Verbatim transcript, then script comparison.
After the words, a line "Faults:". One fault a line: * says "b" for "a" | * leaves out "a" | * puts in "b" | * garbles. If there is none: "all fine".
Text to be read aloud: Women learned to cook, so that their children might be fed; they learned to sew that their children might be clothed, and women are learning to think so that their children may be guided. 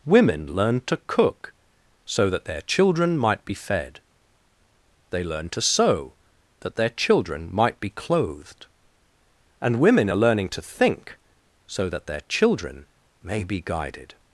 Women learned to cook, so that their children might be fed; they learned to sew that their children might be clothed, and women are learning to think so that their children may be guided.
Faults:
all fine